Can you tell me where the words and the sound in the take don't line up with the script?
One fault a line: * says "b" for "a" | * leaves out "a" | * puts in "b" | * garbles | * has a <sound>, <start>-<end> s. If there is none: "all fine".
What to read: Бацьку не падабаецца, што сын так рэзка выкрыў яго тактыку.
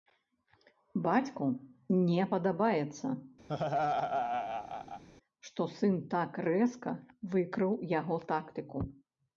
* has a laugh, 3.5-5.0 s